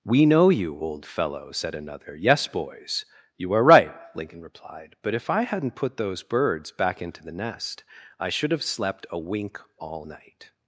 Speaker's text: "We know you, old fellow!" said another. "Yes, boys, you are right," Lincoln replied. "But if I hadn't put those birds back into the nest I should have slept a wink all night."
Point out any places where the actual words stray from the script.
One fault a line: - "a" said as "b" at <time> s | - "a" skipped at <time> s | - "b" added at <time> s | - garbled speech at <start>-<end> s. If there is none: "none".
none